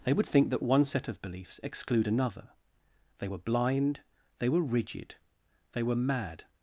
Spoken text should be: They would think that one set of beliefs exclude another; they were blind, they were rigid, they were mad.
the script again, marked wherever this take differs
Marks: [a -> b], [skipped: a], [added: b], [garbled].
They would think that one set of beliefs exclude another; they were blind, they were rigid, they were mad.